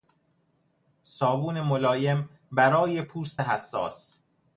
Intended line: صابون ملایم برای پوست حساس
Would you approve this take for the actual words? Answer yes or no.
yes